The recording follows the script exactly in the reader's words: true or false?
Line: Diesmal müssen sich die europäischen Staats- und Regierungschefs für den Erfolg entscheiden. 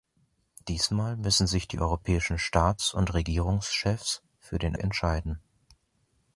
false